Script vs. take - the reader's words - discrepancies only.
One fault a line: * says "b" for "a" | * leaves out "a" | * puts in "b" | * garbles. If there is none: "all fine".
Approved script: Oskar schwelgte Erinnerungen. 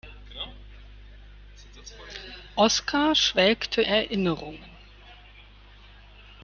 all fine